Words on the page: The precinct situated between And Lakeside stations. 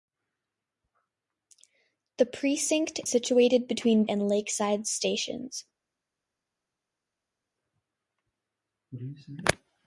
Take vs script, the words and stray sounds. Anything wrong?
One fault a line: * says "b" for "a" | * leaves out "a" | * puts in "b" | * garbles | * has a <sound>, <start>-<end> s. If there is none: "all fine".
all fine